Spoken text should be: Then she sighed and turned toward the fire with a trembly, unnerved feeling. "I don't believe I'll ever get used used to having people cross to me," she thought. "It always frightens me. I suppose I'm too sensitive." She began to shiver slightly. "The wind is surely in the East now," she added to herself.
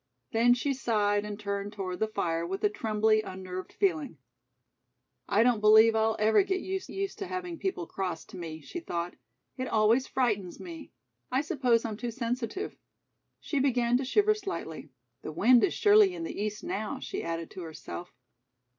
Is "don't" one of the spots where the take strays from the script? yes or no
no